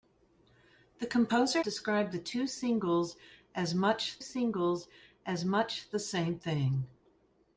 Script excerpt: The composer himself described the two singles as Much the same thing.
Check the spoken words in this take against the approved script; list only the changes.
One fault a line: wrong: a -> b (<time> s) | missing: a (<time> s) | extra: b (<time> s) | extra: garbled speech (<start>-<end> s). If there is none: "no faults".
missing: himself (1.6 s)
extra: singles as Much (4.2 s)